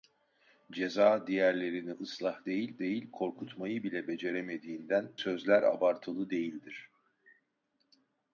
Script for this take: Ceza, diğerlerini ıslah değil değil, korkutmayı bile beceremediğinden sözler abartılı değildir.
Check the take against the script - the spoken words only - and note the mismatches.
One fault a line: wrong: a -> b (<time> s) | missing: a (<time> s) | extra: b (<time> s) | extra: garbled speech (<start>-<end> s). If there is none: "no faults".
no faults